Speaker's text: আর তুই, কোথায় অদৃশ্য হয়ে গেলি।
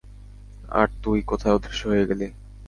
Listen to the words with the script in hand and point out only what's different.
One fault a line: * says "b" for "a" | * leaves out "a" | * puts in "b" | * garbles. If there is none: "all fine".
all fine